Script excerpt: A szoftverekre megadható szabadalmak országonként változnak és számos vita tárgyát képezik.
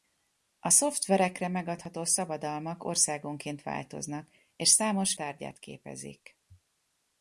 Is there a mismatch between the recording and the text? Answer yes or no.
yes